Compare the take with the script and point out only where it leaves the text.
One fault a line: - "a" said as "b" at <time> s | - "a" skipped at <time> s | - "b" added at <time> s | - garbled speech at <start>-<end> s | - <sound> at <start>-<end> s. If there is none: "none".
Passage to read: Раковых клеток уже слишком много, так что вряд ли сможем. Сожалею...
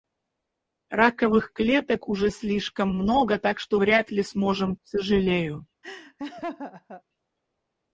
- laugh at 5.8-7.0 s